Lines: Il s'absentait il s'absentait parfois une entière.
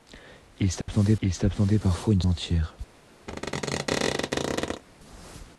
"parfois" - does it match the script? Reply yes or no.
yes